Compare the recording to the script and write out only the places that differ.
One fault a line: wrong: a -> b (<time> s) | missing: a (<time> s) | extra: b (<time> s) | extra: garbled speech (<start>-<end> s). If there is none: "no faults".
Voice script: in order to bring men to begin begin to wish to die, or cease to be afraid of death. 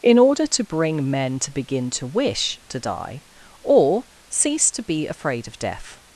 missing: begin (1.9 s)